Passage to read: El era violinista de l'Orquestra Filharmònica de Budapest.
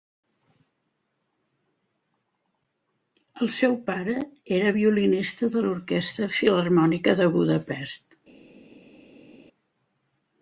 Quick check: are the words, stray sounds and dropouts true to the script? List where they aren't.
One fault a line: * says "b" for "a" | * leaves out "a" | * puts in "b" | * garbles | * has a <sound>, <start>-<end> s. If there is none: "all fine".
* puts in "seu pare"